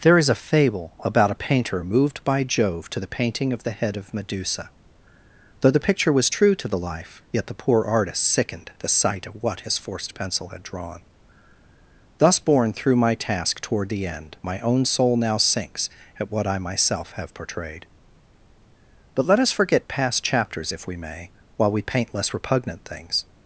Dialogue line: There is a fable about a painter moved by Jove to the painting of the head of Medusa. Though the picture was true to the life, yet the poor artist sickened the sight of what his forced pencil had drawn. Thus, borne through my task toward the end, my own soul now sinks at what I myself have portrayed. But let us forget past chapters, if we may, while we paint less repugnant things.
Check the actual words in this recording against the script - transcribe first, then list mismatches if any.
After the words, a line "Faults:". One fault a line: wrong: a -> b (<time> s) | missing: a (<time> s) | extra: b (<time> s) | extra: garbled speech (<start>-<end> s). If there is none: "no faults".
There is a fable about a painter moved by Jove to the painting of the head of Medusa. Though the picture was true to the life, yet the poor artist sickened the sight of what his forced pencil had drawn. Thus, borne through my task toward the end, my own soul now sinks at what I myself have portrayed. But let us forget past chapters, if we may, while we paint less repugnant things.
Faults:
no faults